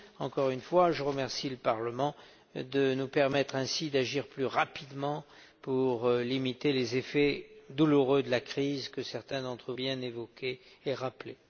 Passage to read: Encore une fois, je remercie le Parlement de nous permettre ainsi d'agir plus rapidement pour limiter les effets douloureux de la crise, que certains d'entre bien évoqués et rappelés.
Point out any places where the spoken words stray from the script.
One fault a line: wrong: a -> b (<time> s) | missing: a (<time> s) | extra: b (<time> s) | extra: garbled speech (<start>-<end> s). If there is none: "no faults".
no faults